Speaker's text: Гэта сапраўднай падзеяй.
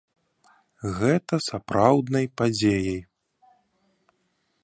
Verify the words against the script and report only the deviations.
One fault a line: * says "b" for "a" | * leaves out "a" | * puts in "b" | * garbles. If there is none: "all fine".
all fine